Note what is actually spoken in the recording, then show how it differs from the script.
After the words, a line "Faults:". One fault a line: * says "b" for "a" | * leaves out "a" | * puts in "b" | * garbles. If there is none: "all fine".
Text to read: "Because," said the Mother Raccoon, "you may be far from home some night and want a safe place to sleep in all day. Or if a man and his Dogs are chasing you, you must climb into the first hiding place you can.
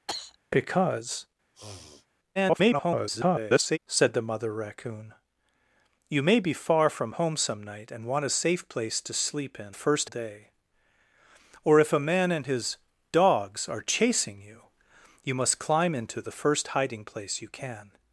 "Because," [garbled] said the Mother Raccoon, "you may be far from home some night and want a safe place to sleep in first day. Or if a man and his Dogs are chasing you, you must climb into the first hiding place you can.
Faults:
* garbles
* says "first" for "all"